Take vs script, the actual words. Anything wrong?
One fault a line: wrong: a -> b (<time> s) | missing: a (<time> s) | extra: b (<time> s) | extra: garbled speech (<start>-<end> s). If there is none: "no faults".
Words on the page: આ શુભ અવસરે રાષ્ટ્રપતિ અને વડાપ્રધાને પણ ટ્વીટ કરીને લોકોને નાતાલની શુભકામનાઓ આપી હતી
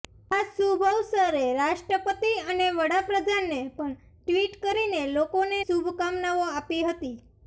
missing: નાતાલની (5.6 s)